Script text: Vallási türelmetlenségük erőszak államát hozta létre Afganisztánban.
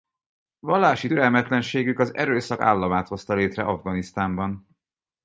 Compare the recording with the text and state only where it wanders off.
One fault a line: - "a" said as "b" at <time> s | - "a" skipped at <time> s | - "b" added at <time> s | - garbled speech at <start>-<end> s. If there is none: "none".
- "az" added at 2.0 s